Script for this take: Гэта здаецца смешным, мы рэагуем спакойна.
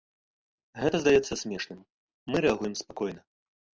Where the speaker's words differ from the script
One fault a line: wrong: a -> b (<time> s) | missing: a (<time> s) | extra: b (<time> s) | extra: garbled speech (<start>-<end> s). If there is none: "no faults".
no faults